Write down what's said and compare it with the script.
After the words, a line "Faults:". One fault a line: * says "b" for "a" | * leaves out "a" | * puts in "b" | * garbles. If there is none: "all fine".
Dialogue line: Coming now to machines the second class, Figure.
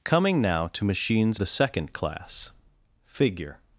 Coming now to machines the second class, Figure.
Faults:
all fine